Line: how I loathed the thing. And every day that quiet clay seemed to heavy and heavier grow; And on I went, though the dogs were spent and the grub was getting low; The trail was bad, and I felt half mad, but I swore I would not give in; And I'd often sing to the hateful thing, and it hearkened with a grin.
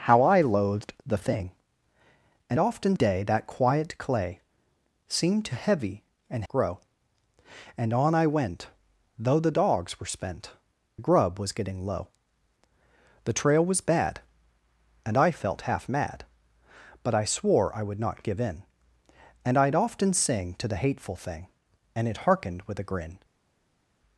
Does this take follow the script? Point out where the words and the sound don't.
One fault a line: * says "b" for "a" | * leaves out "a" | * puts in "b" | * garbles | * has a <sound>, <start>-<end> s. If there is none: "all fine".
* says "often" for "every"
* leaves out "heavier"
* leaves out "and"